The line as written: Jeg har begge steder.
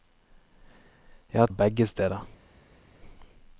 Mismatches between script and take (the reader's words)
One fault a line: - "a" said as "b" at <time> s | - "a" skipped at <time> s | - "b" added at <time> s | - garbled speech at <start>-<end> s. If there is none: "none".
none